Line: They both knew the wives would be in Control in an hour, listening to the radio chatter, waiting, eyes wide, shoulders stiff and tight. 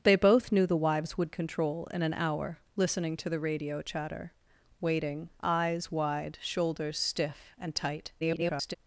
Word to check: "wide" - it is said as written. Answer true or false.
true